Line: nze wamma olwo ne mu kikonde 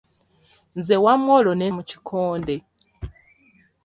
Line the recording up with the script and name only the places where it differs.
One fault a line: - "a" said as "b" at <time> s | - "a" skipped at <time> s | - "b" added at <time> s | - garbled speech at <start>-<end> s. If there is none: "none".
none